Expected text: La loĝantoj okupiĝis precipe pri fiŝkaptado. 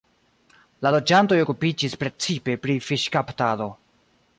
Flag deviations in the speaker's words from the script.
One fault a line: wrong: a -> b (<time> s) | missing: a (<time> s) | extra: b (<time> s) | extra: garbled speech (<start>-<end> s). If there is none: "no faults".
no faults